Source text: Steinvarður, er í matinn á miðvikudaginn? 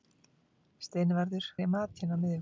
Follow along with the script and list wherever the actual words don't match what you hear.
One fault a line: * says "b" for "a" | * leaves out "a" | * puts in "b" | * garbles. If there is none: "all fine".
all fine